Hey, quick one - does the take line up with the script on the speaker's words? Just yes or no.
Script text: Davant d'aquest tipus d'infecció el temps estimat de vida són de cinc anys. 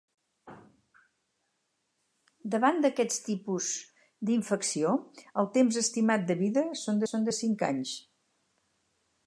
no